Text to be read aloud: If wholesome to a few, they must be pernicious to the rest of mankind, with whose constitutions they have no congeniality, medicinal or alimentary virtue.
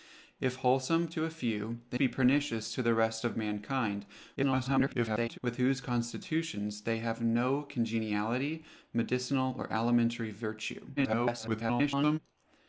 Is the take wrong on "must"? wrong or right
wrong